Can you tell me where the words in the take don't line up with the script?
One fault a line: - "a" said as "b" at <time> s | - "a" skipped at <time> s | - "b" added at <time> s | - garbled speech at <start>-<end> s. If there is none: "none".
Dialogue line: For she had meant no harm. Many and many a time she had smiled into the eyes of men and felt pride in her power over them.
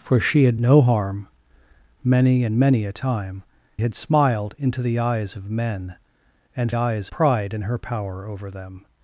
- "meant" skipped at 0.6 s
- "she" skipped at 3.4 s
- "felt" said as "eyes" at 6.7 s